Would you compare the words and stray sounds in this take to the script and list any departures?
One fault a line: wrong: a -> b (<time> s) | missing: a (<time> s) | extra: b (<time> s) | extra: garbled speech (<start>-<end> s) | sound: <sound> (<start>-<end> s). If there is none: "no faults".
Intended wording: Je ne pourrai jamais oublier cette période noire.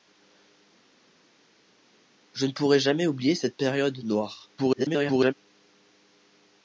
extra: garbled speech (4.6-5.3 s)